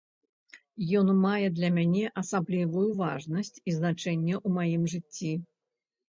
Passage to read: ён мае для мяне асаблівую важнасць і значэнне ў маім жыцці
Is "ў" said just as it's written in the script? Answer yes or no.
yes